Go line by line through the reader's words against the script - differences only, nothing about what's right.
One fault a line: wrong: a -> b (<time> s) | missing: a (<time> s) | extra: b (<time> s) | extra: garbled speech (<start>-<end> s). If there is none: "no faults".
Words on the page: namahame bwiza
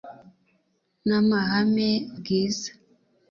no faults